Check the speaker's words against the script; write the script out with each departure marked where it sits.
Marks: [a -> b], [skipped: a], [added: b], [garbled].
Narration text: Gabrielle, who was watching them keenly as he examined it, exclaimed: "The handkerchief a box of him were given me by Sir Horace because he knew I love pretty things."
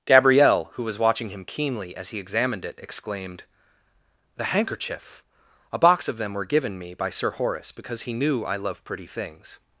Gabrielle, who was watching [them -> him] keenly as he examined it, exclaimed: "The handkerchief a box of [him -> them] were given me by Sir Horace because he knew I love pretty things."